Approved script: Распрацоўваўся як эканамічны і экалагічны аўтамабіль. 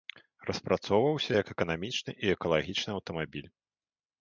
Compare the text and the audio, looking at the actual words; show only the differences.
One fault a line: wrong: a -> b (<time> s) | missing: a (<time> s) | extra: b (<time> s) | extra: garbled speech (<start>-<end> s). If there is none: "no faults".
no faults